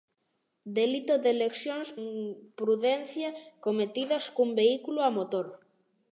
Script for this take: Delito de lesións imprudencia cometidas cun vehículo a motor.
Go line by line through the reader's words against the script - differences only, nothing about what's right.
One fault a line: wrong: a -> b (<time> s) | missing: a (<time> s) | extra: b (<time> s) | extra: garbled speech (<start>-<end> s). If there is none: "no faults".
no faults